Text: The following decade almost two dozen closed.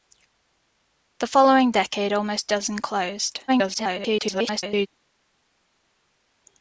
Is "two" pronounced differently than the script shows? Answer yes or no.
yes